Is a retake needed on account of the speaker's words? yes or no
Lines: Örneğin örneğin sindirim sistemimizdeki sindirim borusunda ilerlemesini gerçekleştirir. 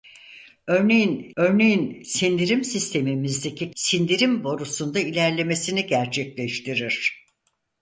no